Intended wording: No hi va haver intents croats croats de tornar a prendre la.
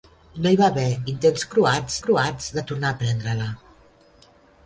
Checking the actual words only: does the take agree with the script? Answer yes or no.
yes